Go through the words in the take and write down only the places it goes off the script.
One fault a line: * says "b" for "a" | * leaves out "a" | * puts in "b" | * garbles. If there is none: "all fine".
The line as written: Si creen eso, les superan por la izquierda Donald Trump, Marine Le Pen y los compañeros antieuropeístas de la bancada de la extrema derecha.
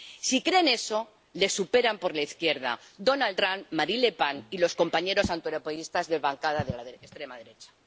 all fine